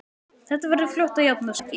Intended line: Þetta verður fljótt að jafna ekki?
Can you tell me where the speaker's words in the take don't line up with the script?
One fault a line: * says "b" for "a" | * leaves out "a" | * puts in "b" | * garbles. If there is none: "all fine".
all fine